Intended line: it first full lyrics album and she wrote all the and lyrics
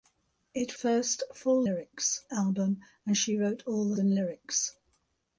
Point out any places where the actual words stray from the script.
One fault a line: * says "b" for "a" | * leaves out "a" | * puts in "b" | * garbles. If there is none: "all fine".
all fine